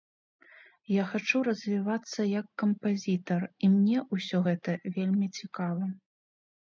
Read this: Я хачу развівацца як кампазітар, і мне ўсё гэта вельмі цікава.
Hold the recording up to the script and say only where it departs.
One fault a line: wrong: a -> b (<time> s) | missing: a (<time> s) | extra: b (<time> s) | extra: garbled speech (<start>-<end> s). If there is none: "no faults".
no faults